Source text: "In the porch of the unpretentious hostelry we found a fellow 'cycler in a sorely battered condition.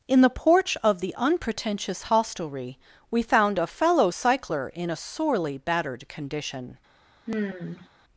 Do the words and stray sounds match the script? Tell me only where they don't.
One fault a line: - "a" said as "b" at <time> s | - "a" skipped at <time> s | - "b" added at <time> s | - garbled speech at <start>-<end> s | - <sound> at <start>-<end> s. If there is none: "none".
- sigh at 7.3-7.9 s